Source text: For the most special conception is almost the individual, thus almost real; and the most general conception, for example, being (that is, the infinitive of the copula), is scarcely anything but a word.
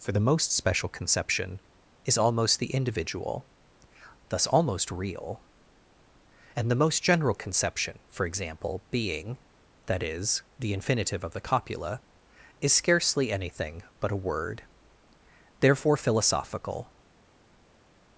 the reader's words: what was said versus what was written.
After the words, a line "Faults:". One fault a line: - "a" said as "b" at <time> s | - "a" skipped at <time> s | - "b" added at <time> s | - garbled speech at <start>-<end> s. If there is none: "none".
For the most special conception is almost the individual, thus almost real; and the most general conception, for example, being (that is, the infinitive of the copula), is scarcely anything but a word. Therefore philosophical
Faults:
- "Therefore philosophical" added at 15.6 s